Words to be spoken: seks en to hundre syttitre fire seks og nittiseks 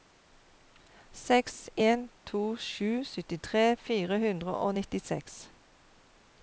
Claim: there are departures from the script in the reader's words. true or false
true